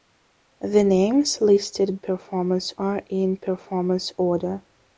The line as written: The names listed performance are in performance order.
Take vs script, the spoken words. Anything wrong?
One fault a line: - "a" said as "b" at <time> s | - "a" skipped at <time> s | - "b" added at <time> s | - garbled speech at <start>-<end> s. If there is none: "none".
none